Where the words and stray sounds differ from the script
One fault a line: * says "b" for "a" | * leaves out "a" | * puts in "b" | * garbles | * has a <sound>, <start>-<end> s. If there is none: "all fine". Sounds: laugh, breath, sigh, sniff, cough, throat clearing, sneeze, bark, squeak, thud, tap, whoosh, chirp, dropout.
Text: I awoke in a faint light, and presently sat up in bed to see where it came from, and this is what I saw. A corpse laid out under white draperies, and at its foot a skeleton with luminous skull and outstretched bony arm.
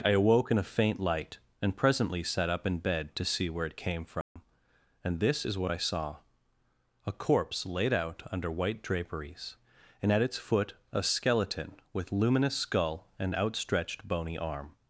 * has a dropout, 4.2-4.4 s